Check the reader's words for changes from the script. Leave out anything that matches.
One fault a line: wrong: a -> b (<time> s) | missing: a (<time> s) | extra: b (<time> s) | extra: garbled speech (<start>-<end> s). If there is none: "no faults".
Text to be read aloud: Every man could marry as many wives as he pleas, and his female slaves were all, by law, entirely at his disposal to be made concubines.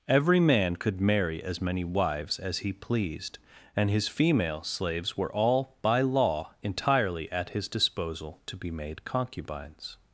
wrong: pleas -> pleased (2.7 s)